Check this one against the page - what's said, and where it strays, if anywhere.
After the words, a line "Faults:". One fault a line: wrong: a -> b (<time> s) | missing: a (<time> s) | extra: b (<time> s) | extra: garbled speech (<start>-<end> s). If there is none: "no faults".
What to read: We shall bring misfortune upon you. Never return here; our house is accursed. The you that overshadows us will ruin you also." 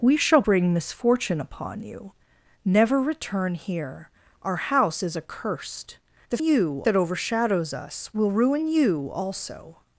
We shall bring misfortune upon you. Never return here; our house is accursed. The you that overshadows us will ruin you also."
Faults:
no faults